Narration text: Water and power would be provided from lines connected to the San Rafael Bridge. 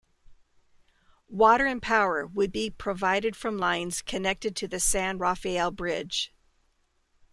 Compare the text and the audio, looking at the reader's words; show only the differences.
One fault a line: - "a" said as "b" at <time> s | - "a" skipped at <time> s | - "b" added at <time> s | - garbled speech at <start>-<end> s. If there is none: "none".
none